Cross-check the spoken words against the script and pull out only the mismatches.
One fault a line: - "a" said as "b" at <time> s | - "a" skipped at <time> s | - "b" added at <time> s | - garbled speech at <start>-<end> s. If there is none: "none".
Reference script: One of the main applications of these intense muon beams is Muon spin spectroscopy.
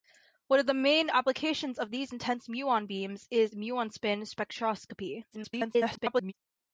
- garbled speech at 5.3-6.3 s